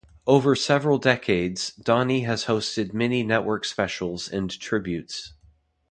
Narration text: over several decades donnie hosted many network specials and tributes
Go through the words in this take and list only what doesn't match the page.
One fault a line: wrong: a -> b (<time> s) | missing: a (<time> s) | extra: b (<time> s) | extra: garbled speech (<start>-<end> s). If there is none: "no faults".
extra: has (2.2 s)